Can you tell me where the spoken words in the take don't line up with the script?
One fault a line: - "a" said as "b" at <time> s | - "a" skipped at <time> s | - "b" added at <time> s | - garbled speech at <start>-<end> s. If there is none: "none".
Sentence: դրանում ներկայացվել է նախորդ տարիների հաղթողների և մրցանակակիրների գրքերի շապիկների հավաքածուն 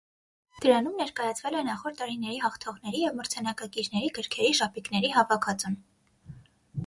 none